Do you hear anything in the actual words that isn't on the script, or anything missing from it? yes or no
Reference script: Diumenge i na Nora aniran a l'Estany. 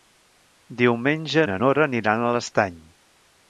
no